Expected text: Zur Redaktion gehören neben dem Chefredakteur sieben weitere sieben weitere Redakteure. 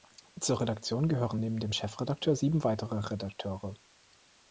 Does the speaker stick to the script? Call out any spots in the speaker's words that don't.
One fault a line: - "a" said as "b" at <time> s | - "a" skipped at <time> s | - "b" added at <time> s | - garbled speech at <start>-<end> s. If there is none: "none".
- "sieben weitere" skipped at 3.0 s